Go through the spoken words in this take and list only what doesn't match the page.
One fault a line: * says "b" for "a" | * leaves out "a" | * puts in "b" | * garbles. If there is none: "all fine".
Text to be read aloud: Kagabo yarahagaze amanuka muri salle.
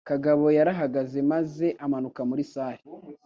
* puts in "maze"